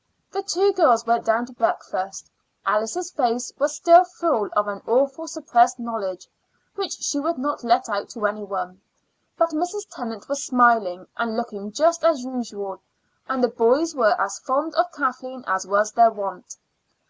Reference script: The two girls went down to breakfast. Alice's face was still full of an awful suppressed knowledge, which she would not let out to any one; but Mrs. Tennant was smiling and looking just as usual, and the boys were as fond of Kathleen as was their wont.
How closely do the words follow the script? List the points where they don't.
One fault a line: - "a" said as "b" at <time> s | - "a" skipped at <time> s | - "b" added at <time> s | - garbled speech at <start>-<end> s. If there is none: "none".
none